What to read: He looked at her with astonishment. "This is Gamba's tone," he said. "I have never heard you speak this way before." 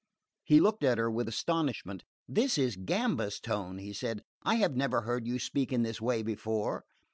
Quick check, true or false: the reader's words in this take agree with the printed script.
false